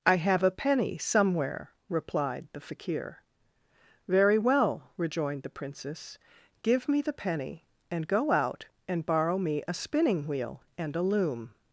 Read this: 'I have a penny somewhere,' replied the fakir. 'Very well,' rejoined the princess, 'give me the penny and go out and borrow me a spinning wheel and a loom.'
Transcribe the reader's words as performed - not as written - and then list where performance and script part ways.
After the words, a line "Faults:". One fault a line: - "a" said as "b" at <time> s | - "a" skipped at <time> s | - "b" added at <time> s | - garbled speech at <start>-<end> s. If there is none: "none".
'I have a penny somewhere,' replied the fakir. 'Very well,' rejoined the princess, 'give me the penny and go out and borrow me a spinning wheel and a loom.'
Faults:
none